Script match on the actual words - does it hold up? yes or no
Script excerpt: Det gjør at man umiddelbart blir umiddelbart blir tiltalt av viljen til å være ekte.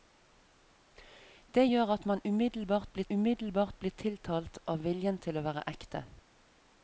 yes